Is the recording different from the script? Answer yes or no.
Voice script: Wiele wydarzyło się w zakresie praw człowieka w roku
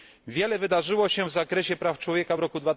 no